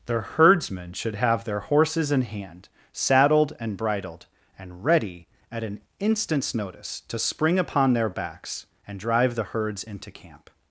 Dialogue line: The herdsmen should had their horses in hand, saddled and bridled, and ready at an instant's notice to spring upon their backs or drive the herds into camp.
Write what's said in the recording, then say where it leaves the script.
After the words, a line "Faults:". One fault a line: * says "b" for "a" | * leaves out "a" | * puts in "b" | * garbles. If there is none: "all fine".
The herdsmen should have their horses in hand, saddled and bridled, and ready at an instant's notice to spring upon their backs and drive the herds into camp.
Faults:
* says "have" for "had"
* says "and" for "or"